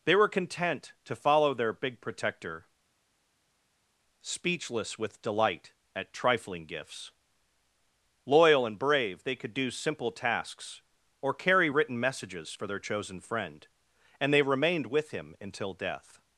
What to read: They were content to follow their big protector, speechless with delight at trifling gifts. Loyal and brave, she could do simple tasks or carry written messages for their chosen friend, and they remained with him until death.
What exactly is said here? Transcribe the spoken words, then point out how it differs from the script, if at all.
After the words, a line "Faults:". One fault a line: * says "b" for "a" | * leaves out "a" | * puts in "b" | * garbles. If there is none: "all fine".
They were content to follow their big protector, speechless with delight at trifling gifts. Loyal and brave, they could do simple tasks or carry written messages for their chosen friend, and they remained with him until death.
Faults:
* says "they" for "she"